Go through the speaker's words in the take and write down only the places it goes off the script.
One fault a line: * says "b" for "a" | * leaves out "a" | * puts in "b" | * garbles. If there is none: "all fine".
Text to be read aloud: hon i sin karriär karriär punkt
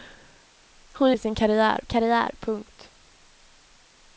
all fine